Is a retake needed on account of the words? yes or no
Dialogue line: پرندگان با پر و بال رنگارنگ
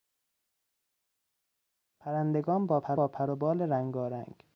yes